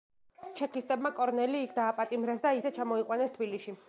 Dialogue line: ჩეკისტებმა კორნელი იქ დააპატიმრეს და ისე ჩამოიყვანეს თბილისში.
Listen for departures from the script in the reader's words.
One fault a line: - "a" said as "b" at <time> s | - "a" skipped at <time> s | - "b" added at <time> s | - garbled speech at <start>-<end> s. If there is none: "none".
none